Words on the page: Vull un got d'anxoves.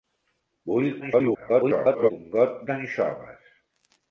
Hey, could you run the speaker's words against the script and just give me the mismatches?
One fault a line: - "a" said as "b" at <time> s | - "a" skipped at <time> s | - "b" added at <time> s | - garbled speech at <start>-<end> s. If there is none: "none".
- garbled speech at 1.0-2.1 s